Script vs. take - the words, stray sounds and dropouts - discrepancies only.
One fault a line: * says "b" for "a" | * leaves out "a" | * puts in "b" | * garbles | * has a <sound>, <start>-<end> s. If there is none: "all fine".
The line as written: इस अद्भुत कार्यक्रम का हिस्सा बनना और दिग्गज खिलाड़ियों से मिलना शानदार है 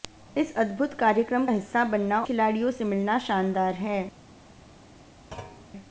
* leaves out "का"
* leaves out "और दिग्गज"
* has a thud, 5.3-5.7 s